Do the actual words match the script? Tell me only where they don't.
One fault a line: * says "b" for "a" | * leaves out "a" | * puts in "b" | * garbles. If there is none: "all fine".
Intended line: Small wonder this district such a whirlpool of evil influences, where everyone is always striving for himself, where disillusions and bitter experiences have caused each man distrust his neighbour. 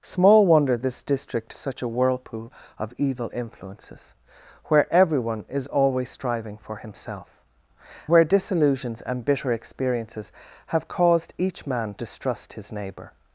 all fine